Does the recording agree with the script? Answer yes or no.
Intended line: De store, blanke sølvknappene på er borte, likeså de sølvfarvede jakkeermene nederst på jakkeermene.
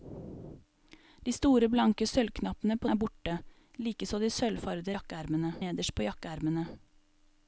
yes